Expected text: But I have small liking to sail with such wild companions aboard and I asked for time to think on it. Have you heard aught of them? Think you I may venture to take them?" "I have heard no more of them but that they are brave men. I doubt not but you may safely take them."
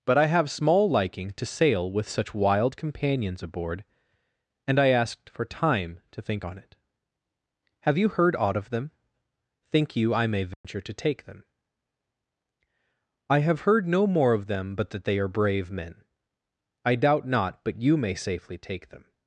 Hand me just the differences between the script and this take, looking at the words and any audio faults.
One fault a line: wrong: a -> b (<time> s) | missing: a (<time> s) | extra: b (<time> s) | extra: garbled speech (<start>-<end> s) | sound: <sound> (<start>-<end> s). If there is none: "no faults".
sound: dropout (10.5-10.6 s)